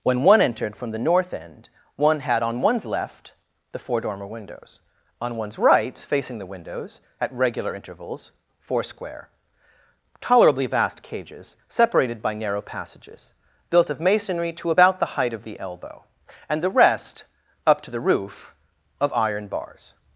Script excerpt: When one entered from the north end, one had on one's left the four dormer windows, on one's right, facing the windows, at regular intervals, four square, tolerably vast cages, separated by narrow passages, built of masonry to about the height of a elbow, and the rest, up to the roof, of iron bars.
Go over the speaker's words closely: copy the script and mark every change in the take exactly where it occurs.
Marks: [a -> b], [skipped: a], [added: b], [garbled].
When one entered from the north end, one had on one's left the four dormer windows, on one's right, facing the windows, at regular intervals, four square, tolerably vast cages, separated by narrow passages, built of masonry to about the height of [a -> the] elbow, and the rest, up to the roof, of iron bars.